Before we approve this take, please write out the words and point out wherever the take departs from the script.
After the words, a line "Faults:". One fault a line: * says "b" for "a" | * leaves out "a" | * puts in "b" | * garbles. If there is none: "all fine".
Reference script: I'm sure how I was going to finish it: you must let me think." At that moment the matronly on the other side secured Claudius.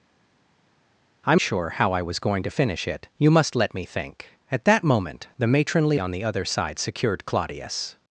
I'm sure how I was going to finish it: you must let me think." At that moment the matronly on the other side secured Claudius.
Faults:
all fine